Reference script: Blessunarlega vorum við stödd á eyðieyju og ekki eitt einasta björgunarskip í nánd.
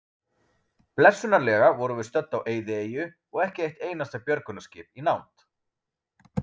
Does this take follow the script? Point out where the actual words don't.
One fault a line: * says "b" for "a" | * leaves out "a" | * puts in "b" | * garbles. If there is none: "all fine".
all fine